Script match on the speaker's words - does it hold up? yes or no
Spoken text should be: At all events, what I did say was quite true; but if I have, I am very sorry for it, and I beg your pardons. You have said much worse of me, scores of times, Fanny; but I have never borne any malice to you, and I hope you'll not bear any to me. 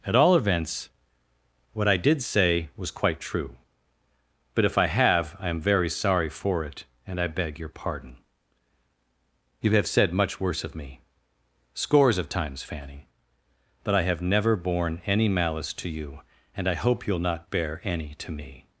no